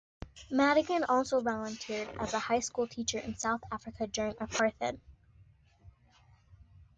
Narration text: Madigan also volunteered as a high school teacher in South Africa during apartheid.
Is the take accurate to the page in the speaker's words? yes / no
yes